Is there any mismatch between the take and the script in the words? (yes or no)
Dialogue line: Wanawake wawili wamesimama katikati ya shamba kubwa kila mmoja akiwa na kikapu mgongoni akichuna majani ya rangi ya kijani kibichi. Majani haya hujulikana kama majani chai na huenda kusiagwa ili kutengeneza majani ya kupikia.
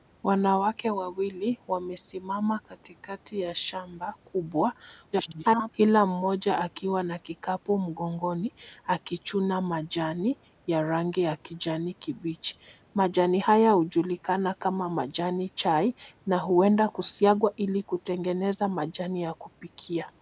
yes